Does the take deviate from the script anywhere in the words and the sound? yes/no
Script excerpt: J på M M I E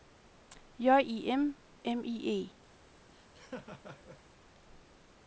yes